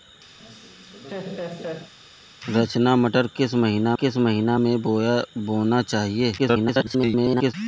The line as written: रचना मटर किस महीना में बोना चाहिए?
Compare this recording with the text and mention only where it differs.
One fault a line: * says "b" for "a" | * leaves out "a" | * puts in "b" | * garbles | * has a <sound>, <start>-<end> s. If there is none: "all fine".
* has a laugh, 0.4-1.9 s
* puts in "किस महीना"
* garbles